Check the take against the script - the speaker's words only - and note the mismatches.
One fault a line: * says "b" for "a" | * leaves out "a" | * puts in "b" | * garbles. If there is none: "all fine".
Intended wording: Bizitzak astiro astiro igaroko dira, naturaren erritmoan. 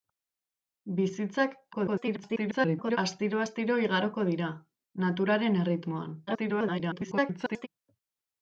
* garbles
* garbles